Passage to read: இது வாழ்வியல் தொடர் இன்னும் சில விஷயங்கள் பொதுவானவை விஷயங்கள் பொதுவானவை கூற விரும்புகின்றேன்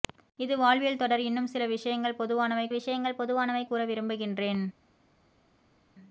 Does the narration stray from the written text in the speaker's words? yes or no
no